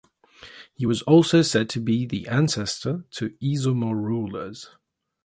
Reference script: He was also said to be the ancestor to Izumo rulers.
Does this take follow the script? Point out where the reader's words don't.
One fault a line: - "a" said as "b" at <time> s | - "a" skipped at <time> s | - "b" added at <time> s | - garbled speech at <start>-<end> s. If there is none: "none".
none